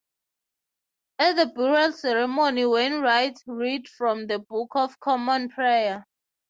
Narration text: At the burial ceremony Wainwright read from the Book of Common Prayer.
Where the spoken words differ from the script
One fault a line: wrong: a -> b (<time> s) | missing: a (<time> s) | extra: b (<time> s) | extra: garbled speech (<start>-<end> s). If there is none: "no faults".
no faults